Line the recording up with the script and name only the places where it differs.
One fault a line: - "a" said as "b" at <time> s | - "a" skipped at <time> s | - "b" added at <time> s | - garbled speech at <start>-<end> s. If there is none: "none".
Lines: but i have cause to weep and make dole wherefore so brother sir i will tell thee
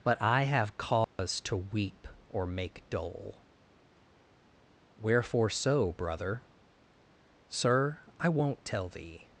- "and" said as "or" at 2.3 s
- "will" said as "won't" at 8.3 s